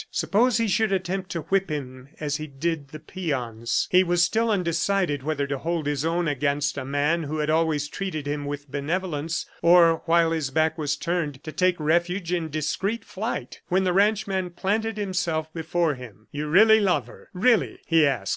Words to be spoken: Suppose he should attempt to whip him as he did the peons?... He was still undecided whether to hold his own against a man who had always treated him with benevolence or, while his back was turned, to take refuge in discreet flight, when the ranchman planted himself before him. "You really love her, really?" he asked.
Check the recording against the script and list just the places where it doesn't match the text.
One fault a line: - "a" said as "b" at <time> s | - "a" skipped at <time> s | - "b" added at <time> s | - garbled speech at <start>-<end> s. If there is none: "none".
none